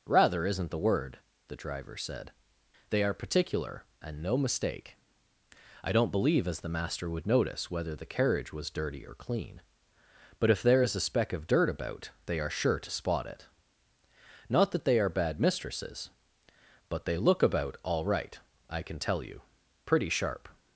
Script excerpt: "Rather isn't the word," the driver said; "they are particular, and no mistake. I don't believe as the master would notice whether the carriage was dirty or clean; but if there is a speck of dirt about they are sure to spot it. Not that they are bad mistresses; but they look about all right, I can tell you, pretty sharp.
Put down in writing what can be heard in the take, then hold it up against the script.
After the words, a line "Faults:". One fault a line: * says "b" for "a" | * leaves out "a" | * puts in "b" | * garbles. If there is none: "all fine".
"Rather isn't the word," the driver said; "they are particular, and no mistake. I don't believe as the master would notice whether the carriage was dirty or clean; but if there is a speck of dirt about they are sure to spot it. Not that they are bad mistresses; but they look about all right, I can tell you, pretty sharp.
Faults:
all fine